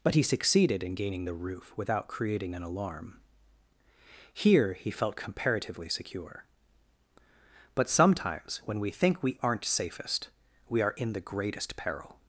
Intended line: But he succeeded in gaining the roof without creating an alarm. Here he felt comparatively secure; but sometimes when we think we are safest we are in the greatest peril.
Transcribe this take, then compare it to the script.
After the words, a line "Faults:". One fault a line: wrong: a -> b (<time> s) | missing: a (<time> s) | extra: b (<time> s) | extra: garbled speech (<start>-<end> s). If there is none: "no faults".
But he succeeded in gaining the roof without creating an alarm. Here he felt comparatively secure; but sometimes when we think we aren't safest we are in the greatest peril.
Faults:
wrong: are -> aren't (9.4 s)